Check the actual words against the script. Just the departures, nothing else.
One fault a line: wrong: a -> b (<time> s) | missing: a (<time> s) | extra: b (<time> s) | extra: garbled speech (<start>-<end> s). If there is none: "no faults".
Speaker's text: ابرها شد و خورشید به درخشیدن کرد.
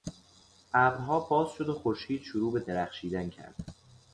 extra: باز (1.2 s)
extra: شروع (2.2 s)